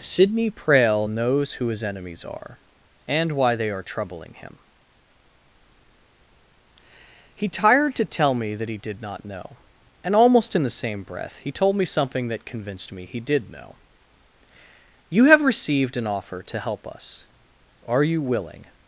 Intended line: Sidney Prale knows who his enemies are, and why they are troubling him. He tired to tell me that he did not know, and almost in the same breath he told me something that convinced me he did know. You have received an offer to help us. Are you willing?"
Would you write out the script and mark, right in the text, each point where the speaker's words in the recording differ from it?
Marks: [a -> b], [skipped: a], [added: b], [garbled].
Sidney Prale knows who his enemies are, and why they are troubling him. He tired to tell me that he did not know, and almost in the same breath he told me something that convinced me he did know. You have received an offer to help us. Are you willing?"